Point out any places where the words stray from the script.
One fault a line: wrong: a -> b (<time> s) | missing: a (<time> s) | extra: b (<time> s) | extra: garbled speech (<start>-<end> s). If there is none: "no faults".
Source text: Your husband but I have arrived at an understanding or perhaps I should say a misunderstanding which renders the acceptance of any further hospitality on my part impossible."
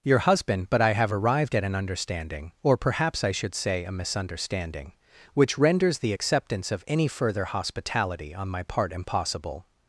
no faults